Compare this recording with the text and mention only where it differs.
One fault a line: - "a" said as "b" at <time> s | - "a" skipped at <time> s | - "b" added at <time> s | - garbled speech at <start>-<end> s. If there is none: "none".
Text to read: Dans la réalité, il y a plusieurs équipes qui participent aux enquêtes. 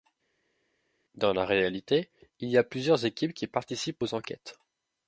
none